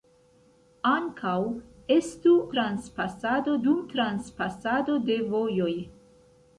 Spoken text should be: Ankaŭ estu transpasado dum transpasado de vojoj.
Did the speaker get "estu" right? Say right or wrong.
right